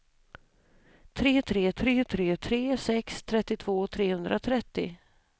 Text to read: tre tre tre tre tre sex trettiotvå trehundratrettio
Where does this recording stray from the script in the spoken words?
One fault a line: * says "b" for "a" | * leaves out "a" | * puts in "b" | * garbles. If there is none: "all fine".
all fine